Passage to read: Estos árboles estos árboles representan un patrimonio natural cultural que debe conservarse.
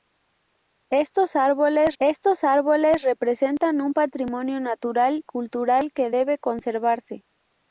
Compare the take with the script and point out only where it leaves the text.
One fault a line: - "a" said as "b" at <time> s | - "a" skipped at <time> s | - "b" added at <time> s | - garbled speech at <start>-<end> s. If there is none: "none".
none